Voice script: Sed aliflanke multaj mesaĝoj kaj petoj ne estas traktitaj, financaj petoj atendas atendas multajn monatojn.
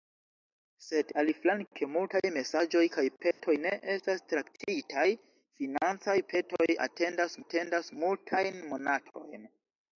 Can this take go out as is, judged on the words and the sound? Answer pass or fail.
fail